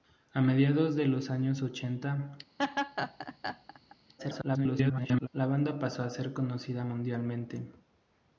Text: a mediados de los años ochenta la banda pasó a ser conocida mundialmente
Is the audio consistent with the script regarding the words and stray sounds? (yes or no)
no